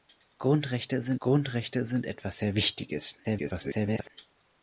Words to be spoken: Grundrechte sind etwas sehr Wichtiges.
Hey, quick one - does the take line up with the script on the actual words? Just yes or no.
no